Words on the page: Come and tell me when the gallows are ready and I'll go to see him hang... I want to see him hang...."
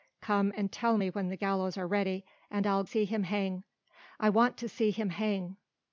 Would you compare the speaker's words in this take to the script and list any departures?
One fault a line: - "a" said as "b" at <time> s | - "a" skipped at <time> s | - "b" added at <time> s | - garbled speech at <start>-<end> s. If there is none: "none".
- "go to" skipped at 2.8 s